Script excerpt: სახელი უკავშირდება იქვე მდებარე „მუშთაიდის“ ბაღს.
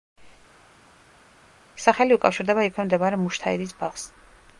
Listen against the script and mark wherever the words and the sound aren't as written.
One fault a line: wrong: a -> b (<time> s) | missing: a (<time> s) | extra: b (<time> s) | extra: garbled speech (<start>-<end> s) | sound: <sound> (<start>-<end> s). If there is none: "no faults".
no faults